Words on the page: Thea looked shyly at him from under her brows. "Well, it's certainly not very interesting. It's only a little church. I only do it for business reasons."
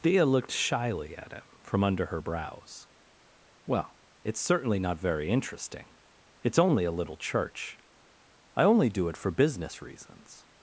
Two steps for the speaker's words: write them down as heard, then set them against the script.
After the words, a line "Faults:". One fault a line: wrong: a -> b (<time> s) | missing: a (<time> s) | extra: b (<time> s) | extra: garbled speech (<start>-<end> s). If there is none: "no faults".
Thea looked shyly at him from under her brows. "Well, it's certainly not very interesting. It's only a little church. I only do it for business reasons."
Faults:
no faults